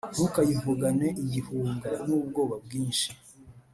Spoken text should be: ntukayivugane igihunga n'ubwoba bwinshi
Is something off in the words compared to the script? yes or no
no